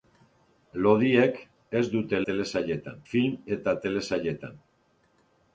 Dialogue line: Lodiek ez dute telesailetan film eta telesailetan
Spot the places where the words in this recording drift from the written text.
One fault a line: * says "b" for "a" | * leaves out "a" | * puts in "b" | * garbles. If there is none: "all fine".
all fine